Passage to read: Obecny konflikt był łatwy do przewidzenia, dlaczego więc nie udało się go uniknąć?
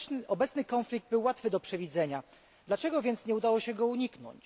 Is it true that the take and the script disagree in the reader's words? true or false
false